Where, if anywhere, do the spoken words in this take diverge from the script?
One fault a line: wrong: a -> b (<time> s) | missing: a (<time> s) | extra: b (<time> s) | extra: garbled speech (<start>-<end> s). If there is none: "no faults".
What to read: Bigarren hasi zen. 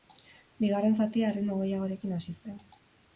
extra: zatia erritmo gehiagorekin (1.0 s)